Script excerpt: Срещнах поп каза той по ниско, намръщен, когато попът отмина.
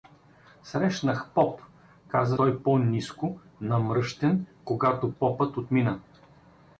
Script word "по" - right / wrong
right